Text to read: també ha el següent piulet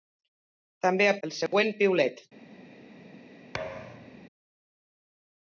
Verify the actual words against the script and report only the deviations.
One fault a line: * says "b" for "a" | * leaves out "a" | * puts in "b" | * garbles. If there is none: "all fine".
all fine